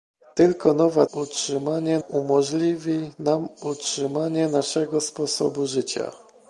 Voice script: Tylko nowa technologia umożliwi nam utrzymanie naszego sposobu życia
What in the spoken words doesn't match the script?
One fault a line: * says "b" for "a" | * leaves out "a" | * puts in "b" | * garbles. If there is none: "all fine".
* says "utrzymanie" for "technologia"